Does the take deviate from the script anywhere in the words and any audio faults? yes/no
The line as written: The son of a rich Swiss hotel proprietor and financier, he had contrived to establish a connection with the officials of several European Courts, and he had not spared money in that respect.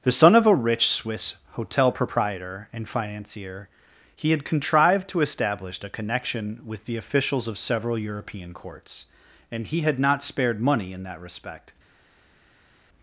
no